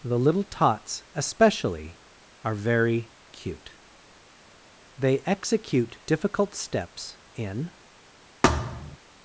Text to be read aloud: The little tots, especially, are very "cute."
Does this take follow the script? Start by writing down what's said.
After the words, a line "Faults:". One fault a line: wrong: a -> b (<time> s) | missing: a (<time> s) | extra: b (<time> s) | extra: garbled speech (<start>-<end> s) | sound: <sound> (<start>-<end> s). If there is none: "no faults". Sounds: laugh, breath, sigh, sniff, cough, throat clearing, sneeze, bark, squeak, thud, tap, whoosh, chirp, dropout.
The little tots, especially, are very "cute." They execute difficult steps in
Faults:
extra: They execute difficult steps in (5.0 s)
sound: thud (8.4-9.0 s)